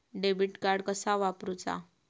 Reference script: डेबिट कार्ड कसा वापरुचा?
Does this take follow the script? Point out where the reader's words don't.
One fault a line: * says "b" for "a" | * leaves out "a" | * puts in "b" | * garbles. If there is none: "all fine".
all fine